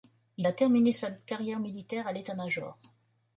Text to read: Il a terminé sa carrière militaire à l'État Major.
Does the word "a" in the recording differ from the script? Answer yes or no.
no